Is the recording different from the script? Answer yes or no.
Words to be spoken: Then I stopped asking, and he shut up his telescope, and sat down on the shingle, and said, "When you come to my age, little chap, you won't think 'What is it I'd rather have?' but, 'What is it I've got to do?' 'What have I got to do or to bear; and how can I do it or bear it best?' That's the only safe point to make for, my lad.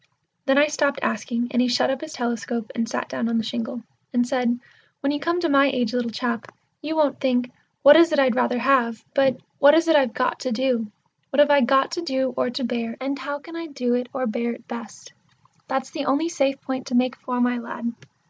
no